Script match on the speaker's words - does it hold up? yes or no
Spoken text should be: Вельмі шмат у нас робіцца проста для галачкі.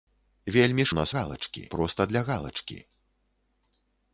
no